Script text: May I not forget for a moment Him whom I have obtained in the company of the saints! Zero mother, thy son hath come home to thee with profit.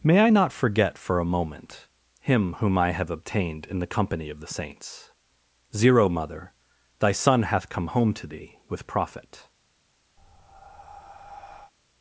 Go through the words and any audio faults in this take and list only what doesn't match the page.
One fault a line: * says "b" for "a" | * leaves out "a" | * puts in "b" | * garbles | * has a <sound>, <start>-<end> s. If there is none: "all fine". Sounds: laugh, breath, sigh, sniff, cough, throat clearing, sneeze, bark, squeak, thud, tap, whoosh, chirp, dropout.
* has a breath, 10.2-11.7 s